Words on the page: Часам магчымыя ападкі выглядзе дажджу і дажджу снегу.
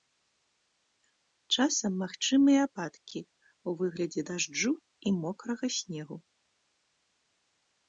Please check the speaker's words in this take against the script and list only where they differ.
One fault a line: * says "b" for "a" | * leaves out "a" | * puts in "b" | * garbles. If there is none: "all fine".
* puts in "ў"
* says "мокрага" for "дажджу"